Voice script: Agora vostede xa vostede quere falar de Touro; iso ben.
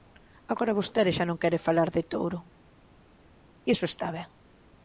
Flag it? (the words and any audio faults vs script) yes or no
yes